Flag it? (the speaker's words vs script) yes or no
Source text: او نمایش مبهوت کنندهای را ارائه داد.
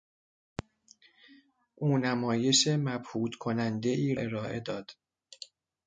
yes